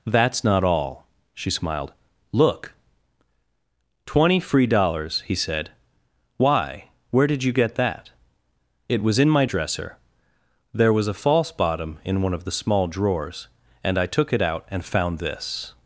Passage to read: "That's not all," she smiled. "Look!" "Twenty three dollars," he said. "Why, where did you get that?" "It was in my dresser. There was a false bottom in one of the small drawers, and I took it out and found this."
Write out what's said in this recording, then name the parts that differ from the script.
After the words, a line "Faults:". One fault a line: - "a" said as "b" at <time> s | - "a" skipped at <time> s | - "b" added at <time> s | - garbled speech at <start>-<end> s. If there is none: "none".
"That's not all," she smiled. "Look!" "Twenty free dollars," he said. "Why, where did you get that?" "It was in my dresser. There was a false bottom in one of the small drawers, and I took it out and found this."
Faults:
- "three" said as "free" at 4.4 s